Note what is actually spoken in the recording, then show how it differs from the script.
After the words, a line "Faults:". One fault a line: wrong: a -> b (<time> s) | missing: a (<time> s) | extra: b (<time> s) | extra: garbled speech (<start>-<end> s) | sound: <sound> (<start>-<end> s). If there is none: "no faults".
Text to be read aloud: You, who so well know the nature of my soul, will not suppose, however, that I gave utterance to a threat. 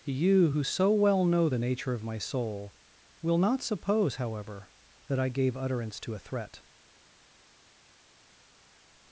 You, who so well know the nature of my soul, will not suppose, however, that I gave utterance to a threat.
Faults:
no faults